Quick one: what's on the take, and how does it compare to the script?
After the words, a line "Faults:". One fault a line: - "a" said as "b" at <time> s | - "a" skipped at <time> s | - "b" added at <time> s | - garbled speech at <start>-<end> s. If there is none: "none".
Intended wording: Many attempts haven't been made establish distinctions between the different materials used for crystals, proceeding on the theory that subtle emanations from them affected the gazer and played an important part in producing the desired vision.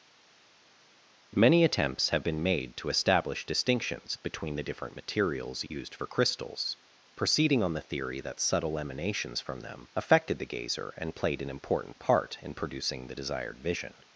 Many attempts have been made to establish distinctions between the different materials used for crystals, proceeding on the theory that subtle emanations from them affected the gazer and played an important part in producing the desired vision.
Faults:
- "haven't" said as "have" at 2.1 s
- "to" added at 2.8 s